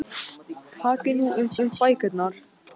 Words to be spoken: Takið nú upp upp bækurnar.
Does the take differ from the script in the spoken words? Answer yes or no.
no